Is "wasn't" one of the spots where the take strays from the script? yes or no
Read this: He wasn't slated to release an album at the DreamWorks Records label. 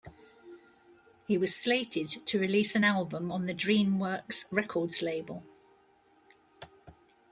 yes